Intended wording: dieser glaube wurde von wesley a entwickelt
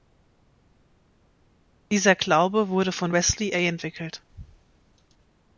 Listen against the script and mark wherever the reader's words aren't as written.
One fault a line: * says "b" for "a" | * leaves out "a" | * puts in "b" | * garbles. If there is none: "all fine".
all fine